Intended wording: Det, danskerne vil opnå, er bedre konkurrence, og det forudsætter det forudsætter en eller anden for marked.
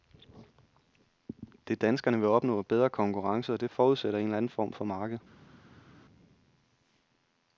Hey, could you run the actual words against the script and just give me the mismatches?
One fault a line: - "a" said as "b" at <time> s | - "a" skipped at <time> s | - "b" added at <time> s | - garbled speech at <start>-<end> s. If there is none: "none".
- "det forudsætter" skipped at 4.2 s
- "form" added at 4.5 s